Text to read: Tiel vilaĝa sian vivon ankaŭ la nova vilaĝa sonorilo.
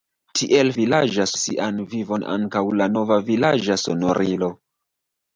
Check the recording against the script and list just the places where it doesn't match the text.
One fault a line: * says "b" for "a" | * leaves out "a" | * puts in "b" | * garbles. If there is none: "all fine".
all fine